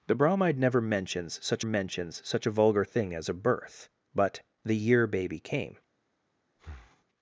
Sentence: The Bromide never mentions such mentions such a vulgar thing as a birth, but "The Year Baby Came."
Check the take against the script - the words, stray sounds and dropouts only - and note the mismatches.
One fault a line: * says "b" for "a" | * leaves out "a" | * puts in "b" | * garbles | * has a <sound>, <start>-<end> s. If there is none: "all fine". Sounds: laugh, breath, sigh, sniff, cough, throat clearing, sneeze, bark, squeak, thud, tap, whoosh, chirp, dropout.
* has a breath, 6.6-7.1 s